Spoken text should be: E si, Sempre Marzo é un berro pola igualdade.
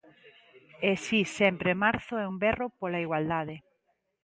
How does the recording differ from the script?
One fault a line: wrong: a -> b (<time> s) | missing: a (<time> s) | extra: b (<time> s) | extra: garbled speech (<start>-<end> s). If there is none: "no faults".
no faults